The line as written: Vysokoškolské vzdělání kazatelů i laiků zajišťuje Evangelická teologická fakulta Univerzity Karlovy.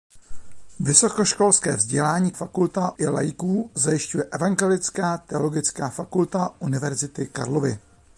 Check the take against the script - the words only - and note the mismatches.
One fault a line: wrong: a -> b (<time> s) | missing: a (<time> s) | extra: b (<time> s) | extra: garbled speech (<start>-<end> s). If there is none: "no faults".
wrong: kazatelů -> fakulta (2.3 s)